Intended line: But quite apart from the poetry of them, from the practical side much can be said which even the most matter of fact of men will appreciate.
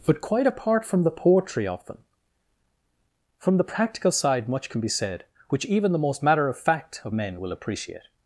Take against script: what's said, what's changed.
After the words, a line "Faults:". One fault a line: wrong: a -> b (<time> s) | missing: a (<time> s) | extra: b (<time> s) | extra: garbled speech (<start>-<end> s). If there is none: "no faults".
But quite apart from the poetry of them, from the practical side much can be said which even the most matter of fact of men will appreciate.
Faults:
no faults